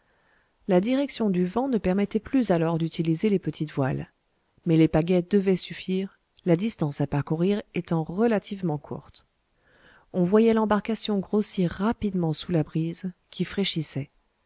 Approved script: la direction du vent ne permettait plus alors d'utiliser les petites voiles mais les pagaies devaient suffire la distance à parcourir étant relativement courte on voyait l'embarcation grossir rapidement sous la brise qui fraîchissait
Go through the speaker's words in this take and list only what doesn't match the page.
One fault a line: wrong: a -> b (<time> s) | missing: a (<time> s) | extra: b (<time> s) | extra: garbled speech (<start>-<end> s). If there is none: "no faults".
no faults